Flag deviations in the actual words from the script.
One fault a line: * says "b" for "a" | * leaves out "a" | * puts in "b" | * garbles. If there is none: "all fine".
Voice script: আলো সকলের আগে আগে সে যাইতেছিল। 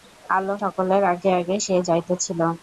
all fine